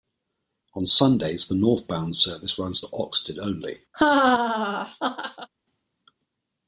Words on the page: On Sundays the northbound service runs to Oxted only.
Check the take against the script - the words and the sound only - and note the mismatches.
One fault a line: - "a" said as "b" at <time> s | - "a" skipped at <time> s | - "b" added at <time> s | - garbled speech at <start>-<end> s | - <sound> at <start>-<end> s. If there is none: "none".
- laugh at 3.9-5.5 s